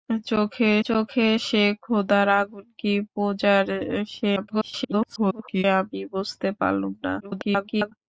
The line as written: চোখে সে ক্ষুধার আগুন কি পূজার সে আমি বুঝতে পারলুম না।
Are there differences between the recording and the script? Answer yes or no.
yes